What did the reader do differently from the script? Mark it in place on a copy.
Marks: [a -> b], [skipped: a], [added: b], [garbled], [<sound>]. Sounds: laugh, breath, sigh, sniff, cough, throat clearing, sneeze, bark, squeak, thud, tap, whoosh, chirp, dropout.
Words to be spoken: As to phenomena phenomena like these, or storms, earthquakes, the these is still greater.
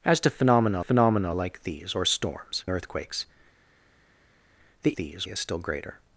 As to phenomena phenomena like these, or storms, earthquakes, the these is still greater.